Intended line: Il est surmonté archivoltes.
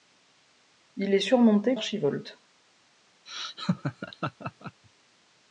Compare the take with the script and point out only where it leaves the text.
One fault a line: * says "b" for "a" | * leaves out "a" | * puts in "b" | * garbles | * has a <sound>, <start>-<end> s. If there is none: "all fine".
* has a laugh, 3.3-4.8 s